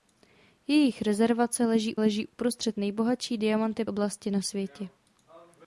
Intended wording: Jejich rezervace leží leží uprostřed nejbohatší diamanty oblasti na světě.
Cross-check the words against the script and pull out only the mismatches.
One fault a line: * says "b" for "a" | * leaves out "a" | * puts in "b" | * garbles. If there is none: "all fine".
all fine